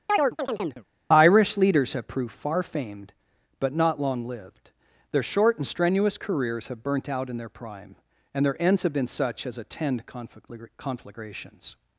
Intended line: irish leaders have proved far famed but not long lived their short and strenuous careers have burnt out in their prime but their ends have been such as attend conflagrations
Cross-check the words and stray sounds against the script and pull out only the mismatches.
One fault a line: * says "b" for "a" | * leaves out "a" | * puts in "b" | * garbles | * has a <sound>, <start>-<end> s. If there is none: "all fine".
* has a chirp, 0.1-0.9 s
* says "and" for "but"